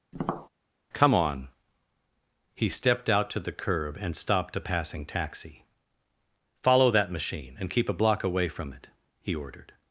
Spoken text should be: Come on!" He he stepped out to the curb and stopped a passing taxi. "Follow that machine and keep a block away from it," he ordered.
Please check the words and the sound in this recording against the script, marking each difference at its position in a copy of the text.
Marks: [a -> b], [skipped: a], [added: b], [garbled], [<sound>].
[tap] Come on!" He [skipped: he] stepped out to the curb and stopped a passing taxi. "Follow that machine and keep a block away from it," he ordered.